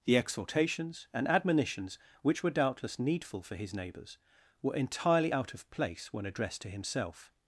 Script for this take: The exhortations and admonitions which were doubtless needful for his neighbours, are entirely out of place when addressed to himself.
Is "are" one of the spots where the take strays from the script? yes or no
yes